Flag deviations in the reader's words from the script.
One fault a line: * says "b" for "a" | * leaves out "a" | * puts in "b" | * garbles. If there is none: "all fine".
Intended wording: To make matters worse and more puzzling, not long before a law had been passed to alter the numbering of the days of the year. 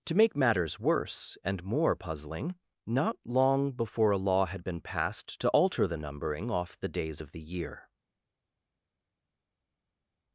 * says "off" for "of"